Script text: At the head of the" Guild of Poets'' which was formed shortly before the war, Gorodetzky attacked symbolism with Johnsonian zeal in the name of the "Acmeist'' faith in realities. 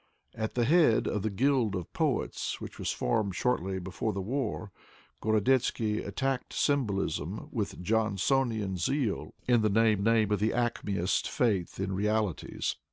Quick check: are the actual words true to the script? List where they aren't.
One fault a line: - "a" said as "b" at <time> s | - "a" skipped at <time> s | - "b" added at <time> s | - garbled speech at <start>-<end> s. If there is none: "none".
- "name" added at 10.0 s